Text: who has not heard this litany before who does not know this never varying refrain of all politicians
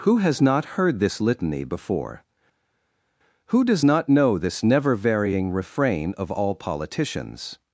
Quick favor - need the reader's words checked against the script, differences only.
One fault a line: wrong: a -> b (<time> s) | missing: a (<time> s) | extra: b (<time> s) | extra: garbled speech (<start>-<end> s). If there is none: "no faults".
no faults